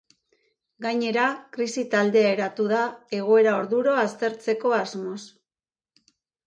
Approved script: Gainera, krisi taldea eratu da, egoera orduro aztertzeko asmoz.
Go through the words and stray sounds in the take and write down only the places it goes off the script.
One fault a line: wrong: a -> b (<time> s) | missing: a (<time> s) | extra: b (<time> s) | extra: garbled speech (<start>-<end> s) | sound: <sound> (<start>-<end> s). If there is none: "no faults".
no faults